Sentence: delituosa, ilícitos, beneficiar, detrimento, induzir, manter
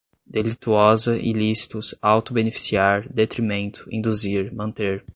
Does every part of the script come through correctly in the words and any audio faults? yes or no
no